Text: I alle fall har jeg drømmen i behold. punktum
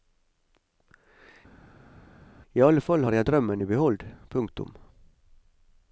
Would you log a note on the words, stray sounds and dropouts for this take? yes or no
no